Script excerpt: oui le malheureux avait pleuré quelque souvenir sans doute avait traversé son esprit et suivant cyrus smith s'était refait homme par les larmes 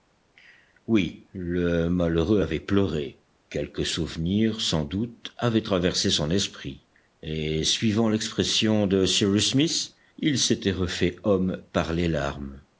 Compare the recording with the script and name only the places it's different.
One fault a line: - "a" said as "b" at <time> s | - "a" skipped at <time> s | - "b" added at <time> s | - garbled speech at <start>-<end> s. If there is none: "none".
- "l'expression de" added at 8.1 s
- "il" added at 10.2 s